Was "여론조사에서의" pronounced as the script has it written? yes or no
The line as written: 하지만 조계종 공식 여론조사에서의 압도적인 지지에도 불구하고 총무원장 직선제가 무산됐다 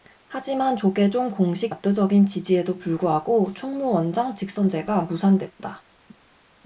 no